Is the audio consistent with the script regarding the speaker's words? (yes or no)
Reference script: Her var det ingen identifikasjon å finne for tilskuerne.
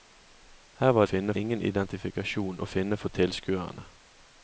no